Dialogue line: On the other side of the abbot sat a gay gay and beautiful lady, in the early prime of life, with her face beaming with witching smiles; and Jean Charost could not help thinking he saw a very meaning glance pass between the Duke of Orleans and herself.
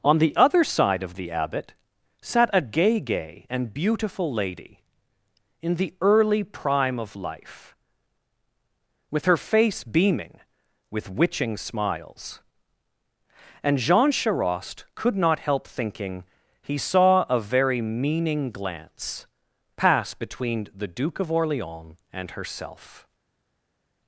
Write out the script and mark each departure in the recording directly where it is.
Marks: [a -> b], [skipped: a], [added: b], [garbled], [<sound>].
On the other side of the abbot sat a gay gay and beautiful lady, in the early prime of life, with her face beaming with witching smiles; and Jean Charost could not help thinking he saw a very meaning glance pass between the Duke of Orleans and herself.